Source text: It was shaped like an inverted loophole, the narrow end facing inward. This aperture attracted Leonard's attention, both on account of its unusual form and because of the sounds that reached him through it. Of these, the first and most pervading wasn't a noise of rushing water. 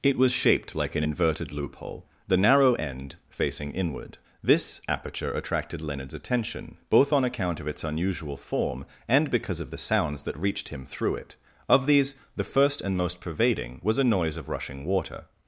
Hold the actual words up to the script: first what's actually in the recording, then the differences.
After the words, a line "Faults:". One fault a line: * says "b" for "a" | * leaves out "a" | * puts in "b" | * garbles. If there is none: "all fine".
It was shaped like an inverted loophole, the narrow end facing inward. This aperture attracted Leonard's attention, both on account of its unusual form and because of the sounds that reached him through it. Of these, the first and most pervading was a noise of rushing water.
Faults:
* says "was" for "wasn't"